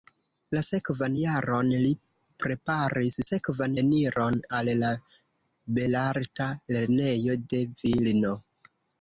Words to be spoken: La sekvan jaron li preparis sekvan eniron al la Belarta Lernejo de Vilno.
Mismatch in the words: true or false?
false